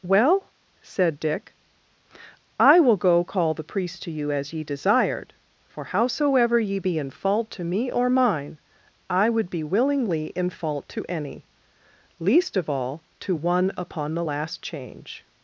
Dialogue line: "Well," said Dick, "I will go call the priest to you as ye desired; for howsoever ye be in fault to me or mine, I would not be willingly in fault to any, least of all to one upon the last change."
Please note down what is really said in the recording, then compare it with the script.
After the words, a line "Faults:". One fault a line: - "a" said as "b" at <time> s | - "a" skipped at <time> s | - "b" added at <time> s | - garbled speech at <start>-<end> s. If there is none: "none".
"Well," said Dick, "I will go call the priest to you as ye desired; for howsoever ye be in fault to me or mine, I would be willingly in fault to any, least of all to one upon the last change."
Faults:
- "not" skipped at 9.5 s